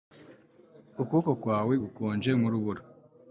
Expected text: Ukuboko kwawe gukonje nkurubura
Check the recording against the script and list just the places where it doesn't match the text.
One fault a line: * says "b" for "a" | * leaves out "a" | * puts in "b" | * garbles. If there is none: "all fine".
all fine